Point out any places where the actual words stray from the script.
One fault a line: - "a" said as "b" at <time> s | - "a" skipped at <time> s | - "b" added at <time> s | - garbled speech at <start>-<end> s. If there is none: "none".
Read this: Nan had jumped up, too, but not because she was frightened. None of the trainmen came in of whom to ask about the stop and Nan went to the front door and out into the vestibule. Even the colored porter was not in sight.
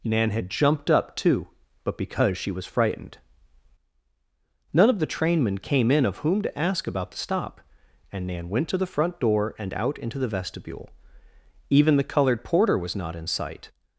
- "not" skipped at 2.0 s